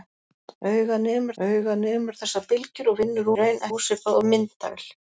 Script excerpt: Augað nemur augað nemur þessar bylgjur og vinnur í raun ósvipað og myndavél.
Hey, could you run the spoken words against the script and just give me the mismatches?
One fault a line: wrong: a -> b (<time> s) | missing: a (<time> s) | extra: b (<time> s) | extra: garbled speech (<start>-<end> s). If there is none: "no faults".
no faults